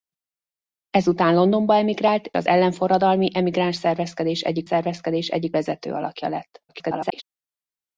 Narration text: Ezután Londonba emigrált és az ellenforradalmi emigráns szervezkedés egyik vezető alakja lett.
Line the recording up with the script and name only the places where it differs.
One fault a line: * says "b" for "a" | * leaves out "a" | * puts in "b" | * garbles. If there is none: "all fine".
* leaves out "és"
* puts in "szervezkedés egyik"
* garbles